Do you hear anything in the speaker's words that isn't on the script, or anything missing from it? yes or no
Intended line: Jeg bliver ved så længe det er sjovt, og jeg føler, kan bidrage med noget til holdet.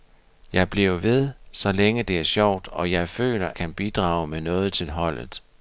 no